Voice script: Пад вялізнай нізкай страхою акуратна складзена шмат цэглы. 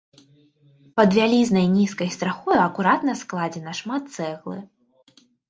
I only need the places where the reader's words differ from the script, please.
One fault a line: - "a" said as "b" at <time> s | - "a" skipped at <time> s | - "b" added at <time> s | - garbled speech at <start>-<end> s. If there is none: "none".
none